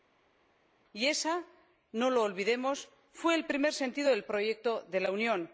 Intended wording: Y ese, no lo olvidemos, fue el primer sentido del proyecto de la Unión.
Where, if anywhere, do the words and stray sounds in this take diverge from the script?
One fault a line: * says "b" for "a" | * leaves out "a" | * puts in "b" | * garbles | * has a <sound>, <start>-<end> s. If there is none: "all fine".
all fine